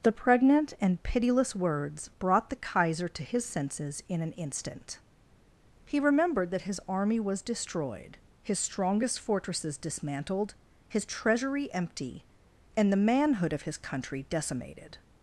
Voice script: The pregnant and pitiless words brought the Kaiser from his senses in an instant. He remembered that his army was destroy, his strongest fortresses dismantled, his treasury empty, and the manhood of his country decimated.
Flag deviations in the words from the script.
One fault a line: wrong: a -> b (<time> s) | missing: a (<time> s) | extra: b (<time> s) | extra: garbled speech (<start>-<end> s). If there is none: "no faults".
wrong: from -> to (3.1 s)
wrong: destroy -> destroyed (7.4 s)